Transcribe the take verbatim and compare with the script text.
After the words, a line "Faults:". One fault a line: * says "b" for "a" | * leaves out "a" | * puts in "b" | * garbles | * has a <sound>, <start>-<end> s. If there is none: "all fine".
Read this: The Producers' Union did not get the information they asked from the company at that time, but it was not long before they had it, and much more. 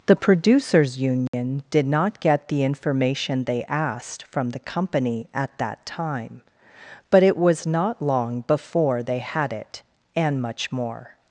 The Producers' Union did not get the information they asked from the company at that time, but it was not long before they had it, and much more.
Faults:
* has a dropout, 1.3-1.3 s